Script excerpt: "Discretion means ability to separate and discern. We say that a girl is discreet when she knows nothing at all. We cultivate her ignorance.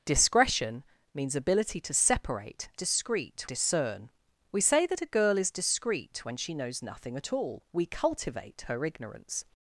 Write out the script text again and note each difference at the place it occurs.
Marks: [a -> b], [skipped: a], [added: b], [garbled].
"Discretion means ability to separate [and -> discreet] discern. We say that a girl is discreet when she knows nothing at all. We cultivate her ignorance.